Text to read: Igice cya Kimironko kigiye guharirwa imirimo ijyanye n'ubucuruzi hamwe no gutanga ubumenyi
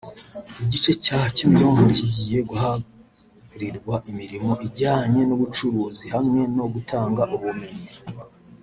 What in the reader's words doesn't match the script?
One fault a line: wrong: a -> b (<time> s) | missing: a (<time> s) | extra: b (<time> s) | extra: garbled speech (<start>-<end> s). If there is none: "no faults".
no faults